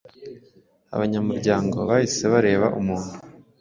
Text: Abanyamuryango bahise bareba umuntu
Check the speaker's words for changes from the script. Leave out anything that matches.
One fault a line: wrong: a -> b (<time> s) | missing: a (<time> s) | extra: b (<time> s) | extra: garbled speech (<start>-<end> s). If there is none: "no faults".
no faults